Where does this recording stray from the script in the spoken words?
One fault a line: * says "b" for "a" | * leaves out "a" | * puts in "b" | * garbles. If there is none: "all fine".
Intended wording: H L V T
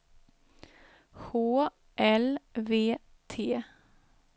all fine